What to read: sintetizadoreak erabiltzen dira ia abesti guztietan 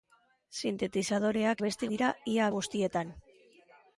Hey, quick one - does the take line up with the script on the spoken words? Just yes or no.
no